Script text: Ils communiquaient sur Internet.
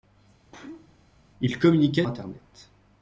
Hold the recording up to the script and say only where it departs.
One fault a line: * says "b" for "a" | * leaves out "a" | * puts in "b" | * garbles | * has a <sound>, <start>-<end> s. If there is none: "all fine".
* has a sneeze, 0.5-1.1 s
* leaves out "sur"